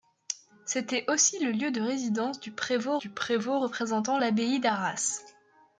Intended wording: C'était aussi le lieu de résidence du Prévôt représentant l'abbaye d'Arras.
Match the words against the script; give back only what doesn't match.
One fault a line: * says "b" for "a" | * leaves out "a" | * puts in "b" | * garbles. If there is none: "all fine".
* puts in "du Prévôt"